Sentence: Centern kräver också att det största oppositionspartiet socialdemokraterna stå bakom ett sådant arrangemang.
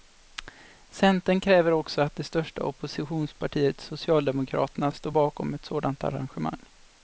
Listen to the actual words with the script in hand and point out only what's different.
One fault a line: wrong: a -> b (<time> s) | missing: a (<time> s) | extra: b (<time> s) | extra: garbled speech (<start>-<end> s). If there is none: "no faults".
no faults